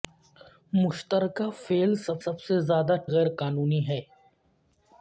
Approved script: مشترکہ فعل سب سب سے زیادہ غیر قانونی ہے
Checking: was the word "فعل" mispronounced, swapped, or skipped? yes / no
no